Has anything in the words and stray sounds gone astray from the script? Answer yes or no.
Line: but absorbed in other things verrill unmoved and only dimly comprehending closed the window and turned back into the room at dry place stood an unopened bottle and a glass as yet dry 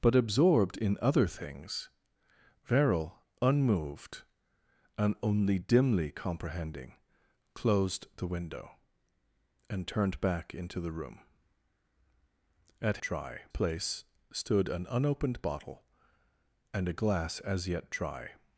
no